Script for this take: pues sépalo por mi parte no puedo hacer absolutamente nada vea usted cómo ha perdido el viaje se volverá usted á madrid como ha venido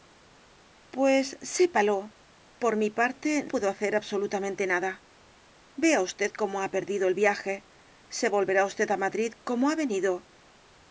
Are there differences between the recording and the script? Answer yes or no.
yes